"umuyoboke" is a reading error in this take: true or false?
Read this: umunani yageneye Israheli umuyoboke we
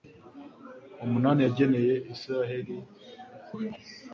true